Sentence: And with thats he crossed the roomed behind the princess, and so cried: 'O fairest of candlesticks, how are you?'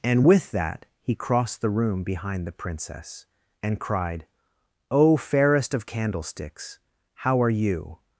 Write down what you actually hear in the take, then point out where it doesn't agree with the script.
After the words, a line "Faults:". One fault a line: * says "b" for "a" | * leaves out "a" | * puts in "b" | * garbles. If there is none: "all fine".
And with that he crossed the room behind the princess, and cried: 'O fairest of candlesticks, how are you?'
Faults:
* says "that" for "thats"
* says "room" for "roomed"
* leaves out "so"